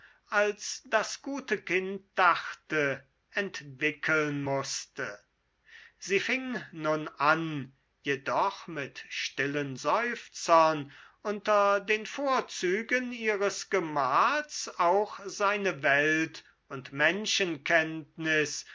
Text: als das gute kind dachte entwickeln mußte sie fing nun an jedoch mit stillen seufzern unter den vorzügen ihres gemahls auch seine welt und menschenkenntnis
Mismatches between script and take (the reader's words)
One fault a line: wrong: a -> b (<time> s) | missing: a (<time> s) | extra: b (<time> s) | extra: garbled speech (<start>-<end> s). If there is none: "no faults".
no faults